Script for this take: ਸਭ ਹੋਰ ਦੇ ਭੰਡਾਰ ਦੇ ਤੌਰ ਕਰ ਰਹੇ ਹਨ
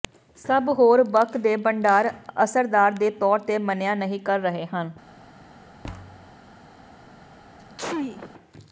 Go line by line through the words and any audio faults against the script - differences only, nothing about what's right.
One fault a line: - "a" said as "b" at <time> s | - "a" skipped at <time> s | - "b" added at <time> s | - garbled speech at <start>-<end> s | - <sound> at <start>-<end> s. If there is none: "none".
- "ਬਕ" added at 1.0 s
- "ਅਸਰਦਾਰ" added at 2.4 s
- "ਤੇ ਮੰਨਿਆ ਨਹੀ" added at 3.4 s
- thud at 5.8-6.4 s
- sneeze at 7.6-8.3 s